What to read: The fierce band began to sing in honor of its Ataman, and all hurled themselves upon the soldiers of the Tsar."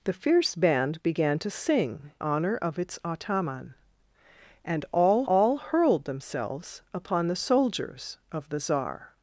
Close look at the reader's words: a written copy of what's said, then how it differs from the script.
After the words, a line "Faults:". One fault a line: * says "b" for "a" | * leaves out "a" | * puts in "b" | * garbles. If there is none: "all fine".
The fierce band began to sing honor of its Ataman, and all all hurled themselves upon the soldiers of the Tsar."
Faults:
* leaves out "in"
* puts in "all"